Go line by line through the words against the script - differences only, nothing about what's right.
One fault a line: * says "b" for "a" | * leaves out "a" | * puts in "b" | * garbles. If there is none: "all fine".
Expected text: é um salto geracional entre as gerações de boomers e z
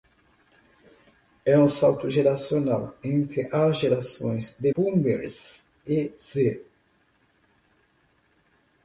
all fine